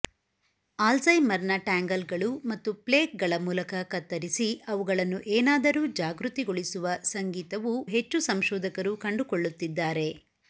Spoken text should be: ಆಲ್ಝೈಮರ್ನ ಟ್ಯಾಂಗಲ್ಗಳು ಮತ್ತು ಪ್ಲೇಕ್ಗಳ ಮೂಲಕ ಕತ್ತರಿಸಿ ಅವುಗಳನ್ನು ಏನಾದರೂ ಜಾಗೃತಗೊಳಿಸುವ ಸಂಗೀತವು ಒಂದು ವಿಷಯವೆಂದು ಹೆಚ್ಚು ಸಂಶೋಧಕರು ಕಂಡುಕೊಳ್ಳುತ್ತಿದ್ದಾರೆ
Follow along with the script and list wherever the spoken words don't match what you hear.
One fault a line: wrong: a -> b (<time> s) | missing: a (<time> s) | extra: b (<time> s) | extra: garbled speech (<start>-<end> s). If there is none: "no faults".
missing: ಒಂದು ವಿಷಯವೆಂದು (7.7 s)